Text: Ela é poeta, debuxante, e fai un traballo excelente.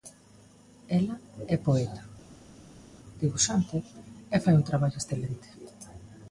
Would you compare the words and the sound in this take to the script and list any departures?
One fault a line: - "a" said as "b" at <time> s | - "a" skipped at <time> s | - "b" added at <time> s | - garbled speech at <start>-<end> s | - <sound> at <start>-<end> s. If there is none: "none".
none